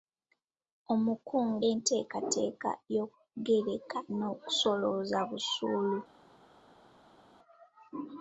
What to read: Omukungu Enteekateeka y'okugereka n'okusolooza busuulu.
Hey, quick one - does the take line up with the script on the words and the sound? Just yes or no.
yes